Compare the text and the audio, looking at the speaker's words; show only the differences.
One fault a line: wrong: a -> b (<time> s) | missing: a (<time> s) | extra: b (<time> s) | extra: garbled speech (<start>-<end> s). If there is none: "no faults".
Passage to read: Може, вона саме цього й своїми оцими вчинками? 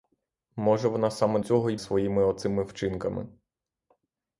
no faults